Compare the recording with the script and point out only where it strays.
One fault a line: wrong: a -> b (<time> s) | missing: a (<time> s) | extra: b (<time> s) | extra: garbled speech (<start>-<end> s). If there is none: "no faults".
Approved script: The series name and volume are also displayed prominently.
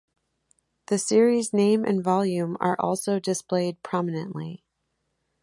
no faults